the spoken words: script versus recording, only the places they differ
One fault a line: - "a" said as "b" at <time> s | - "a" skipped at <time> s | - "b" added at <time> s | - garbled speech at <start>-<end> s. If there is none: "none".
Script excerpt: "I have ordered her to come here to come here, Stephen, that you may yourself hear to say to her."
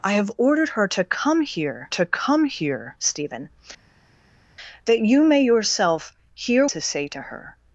none